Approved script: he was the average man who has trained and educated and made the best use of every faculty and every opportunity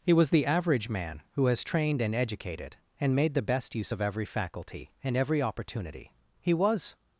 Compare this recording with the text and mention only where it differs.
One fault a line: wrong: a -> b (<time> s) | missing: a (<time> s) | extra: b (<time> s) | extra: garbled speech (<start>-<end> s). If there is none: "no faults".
extra: he was (6.4 s)